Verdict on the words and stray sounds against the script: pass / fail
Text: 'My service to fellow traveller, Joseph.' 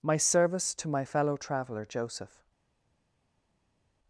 fail